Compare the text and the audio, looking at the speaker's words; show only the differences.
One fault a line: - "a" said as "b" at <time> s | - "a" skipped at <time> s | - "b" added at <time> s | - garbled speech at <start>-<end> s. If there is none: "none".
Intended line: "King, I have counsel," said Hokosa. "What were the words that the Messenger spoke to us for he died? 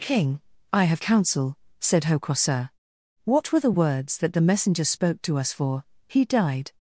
none